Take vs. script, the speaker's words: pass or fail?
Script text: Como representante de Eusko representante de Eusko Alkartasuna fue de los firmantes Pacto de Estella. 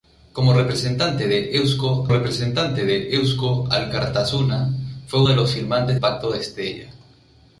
pass